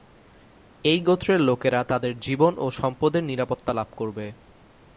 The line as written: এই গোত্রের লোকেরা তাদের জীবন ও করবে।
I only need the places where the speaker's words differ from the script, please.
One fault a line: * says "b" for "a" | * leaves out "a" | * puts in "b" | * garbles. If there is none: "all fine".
* puts in "সম্পদের নিরাপত্তা লাভ"